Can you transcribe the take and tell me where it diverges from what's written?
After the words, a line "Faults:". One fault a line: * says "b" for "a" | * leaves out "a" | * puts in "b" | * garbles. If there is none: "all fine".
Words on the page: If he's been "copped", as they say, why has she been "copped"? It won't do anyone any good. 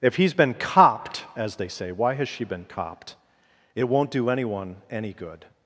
If he's been "copped", as they say, why has she been "copped"? It won't do anyone any good.
Faults:
all fine